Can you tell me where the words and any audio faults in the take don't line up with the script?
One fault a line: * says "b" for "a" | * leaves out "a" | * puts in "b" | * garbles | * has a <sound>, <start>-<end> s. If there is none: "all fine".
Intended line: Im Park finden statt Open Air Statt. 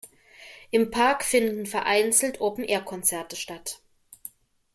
* says "vereinzelt" for "statt"
* puts in "Konzerte"